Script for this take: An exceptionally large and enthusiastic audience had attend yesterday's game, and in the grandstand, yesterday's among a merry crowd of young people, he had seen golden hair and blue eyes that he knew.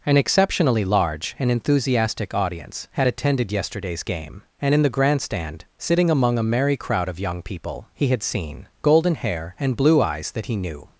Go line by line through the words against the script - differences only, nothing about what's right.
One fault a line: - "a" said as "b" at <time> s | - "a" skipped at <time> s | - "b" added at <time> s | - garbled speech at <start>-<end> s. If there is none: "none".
- "attend" said as "attended" at 3.1 s
- "yesterday's" said as "sitting" at 5.8 s